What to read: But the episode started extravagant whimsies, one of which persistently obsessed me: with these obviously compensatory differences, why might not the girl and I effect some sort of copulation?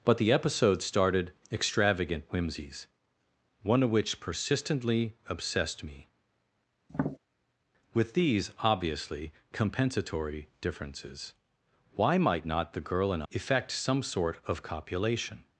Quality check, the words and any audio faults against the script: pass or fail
fail